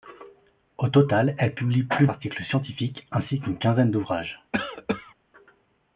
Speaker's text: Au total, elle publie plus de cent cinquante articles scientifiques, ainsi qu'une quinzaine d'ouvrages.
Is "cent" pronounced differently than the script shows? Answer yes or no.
yes